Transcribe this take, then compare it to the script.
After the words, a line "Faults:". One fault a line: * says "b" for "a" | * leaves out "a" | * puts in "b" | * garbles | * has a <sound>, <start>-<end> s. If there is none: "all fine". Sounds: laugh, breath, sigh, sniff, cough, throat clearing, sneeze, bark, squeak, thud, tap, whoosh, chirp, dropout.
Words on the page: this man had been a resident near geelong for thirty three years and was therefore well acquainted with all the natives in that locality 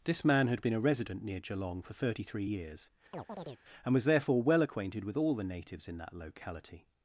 this man had been a resident near geelong for thirty three years and was therefore well acquainted with all the natives in that locality
Faults:
* has a chirp, 3.1-3.6 s